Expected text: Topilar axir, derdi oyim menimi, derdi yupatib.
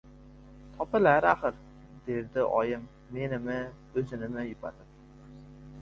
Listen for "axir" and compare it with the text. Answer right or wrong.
right